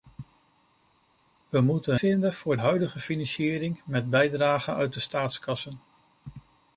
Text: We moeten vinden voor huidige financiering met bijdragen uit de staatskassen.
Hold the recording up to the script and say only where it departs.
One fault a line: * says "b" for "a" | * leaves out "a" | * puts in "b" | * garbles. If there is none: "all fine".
all fine